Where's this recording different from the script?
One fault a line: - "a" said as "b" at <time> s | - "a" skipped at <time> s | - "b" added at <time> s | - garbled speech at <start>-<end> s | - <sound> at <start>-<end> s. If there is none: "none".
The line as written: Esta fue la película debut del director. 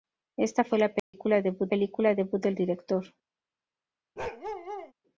- dropout at 1.0-1.1 s
- "película debut" added at 1.7 s
- bark at 4.2-4.9 s